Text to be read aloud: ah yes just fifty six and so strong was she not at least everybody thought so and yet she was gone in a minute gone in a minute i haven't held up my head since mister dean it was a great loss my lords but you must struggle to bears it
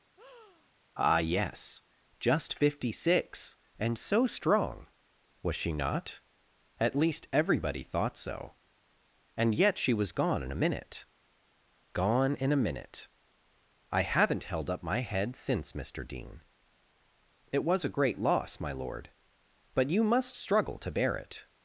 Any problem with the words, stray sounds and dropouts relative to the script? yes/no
yes